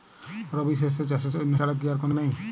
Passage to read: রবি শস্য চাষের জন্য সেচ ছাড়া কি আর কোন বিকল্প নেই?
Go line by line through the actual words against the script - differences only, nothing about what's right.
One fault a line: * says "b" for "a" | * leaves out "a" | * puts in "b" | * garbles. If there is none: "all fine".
* leaves out "সেচ"
* leaves out "বিকল্প"